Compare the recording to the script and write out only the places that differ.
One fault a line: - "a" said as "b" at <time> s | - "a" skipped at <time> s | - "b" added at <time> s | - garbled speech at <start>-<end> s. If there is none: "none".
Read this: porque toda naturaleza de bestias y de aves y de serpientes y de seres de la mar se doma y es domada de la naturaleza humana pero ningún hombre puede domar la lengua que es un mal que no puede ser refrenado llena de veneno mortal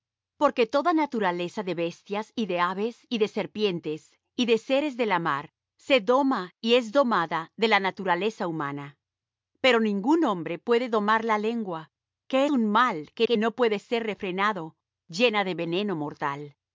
- "es" skipped at 12.4 s
- "que" added at 13.2 s